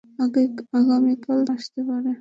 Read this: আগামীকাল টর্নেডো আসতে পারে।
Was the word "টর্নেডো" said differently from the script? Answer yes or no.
yes